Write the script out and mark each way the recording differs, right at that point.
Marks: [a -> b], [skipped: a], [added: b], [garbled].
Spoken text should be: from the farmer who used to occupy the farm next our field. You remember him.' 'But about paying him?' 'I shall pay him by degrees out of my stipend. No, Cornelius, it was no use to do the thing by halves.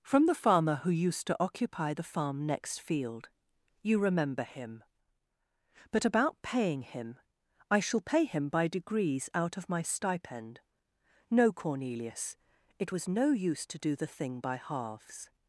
from the farmer who used to occupy the farm next [skipped: our] field. You remember him.' 'But about paying him?' 'I shall pay him by degrees out of my stipend. No, Cornelius, it was no use to do the thing by halves.